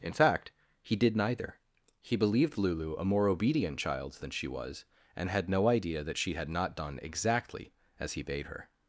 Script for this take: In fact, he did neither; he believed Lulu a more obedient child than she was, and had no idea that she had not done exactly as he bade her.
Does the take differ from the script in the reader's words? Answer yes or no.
no